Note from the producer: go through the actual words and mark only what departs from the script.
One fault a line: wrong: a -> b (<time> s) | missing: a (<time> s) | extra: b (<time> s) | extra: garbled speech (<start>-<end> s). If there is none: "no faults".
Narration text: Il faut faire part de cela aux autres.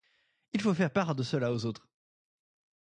no faults